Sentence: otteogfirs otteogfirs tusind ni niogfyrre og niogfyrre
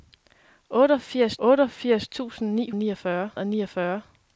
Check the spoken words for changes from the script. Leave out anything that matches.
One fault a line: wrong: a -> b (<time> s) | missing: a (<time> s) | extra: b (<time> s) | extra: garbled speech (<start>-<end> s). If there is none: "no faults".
no faults